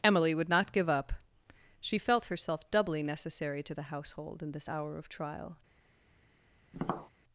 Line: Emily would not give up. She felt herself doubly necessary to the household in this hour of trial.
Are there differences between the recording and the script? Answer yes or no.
no